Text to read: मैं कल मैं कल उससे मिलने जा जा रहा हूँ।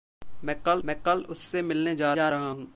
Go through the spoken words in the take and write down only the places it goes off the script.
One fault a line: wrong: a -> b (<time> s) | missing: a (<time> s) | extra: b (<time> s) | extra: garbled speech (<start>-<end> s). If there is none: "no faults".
no faults